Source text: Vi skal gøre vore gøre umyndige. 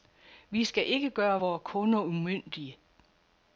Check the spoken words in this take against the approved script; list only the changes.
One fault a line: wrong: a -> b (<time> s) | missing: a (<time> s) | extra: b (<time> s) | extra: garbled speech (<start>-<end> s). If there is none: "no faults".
extra: ikke (0.9 s)
wrong: gøre -> kunder (1.6 s)